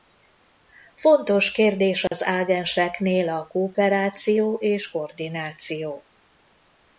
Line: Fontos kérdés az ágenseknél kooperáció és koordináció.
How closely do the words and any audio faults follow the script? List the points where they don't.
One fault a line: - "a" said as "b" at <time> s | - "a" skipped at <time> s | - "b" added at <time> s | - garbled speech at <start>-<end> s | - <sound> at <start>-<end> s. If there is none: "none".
- dropout at 2.1-2.1 s
- "a" added at 3.3 s